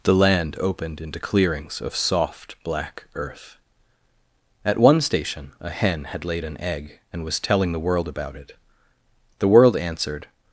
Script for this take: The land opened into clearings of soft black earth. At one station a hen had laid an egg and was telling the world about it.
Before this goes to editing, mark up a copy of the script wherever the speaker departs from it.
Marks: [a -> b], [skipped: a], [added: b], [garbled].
The land opened into clearings of soft black earth. At one station a hen had laid an egg and was telling the world about it. [added: The world answered]